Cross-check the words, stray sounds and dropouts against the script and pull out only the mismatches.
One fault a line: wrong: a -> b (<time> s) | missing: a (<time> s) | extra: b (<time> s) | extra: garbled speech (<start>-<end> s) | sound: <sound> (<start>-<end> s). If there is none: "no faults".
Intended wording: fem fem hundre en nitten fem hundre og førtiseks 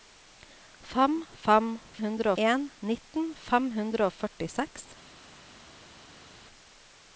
no faults